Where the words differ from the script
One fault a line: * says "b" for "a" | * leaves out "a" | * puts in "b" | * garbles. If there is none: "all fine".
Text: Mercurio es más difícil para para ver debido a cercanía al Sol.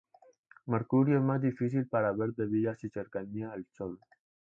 * leaves out "para"
* puts in "su"